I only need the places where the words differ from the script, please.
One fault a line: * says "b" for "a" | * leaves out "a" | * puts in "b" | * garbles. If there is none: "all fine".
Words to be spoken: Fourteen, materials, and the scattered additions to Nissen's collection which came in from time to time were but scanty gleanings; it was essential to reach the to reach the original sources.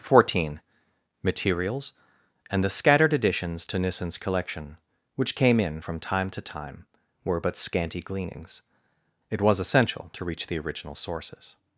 * leaves out "to reach the"